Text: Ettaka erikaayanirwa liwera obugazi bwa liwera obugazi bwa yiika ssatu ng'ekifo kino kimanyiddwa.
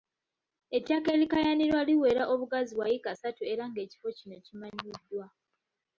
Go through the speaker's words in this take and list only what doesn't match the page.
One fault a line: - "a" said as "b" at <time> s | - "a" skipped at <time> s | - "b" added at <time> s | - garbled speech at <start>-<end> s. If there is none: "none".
- "liwera obugazi bwa" skipped at 2.9 s
- "era" added at 3.5 s